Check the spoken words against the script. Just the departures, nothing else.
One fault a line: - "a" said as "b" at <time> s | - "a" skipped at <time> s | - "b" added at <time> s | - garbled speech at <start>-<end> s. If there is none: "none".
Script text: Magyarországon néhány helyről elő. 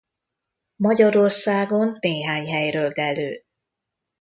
none